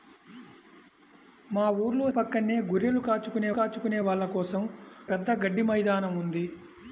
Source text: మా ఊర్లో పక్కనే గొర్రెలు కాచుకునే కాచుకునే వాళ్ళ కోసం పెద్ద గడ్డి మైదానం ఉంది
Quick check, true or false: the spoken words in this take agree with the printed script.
true